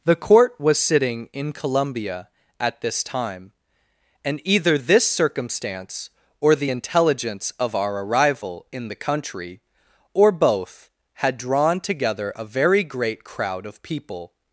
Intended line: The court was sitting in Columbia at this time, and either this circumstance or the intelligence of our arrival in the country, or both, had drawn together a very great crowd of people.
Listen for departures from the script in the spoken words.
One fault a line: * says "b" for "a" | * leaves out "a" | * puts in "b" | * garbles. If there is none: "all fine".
all fine